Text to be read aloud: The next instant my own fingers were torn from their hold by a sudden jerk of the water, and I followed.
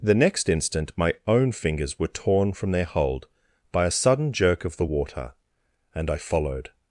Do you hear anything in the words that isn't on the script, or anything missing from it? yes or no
no